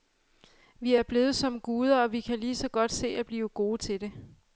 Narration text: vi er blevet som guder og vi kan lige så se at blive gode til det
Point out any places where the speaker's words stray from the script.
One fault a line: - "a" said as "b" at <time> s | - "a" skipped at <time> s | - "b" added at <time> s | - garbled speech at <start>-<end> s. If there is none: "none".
- "godt" added at 2.7 s